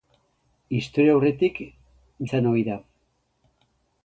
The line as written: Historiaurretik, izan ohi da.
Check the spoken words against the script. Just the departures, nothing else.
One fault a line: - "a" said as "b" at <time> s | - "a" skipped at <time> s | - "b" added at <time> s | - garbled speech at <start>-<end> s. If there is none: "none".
none